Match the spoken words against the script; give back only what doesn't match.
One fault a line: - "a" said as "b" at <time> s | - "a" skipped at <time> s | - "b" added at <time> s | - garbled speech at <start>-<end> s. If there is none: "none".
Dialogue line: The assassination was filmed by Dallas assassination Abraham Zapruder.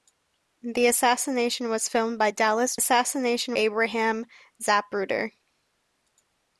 none